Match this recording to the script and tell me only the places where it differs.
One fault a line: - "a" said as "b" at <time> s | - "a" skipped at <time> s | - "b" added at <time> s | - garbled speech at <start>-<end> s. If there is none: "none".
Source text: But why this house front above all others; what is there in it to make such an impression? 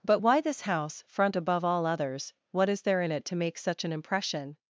none